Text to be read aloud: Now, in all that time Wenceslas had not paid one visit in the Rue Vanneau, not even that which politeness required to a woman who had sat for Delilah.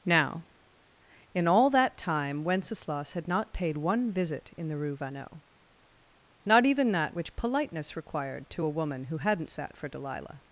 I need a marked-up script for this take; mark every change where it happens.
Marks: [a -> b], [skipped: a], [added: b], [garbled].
Now, in all that time Wenceslas had not paid one visit in the Rue Vanneau, not even that which politeness required to a woman who [had -> hadn't] sat for Delilah.